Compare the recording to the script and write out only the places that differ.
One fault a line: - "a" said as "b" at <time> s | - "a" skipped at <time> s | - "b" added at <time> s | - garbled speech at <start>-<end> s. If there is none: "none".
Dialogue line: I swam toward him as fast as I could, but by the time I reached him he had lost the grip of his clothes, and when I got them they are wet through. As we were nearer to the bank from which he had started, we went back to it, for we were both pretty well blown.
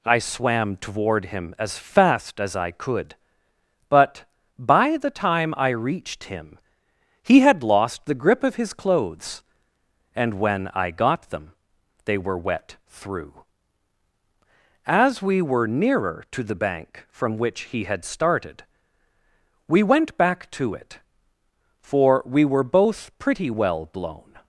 - "are" said as "were" at 12.2 s